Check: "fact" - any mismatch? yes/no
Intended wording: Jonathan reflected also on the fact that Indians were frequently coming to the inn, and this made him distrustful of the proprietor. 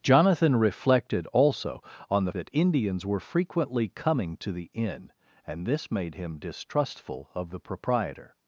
yes